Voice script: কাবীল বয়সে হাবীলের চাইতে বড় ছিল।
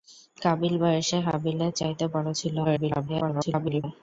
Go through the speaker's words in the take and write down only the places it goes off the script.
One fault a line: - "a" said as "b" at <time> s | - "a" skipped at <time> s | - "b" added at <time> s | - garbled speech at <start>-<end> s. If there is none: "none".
- garbled speech at 2.6-3.8 s